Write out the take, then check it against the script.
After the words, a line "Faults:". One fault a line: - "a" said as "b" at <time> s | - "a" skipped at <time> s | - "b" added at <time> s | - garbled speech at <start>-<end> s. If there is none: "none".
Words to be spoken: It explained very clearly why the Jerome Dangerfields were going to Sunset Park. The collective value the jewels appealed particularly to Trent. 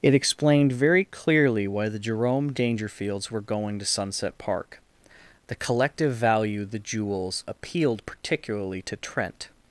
It explained very clearly why the Jerome Dangerfields were going to Sunset Park. The collective value the jewels appealed particularly to Trent.
Faults:
none